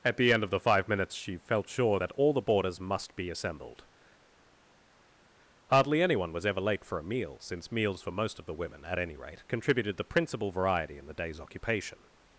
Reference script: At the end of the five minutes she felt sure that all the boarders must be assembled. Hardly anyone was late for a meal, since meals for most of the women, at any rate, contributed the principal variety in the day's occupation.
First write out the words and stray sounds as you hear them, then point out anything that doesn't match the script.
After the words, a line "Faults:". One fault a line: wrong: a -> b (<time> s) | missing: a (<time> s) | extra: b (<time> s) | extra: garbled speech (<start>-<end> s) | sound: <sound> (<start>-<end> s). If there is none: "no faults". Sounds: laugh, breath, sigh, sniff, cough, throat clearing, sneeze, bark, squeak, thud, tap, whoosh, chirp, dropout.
At the end of the five minutes she felt sure that all the boarders must be assembled. Hardly anyone was ever late for a meal, since meals for most of the women, at any rate, contributed the principal variety in the day's occupation.
Faults:
extra: ever (6.5 s)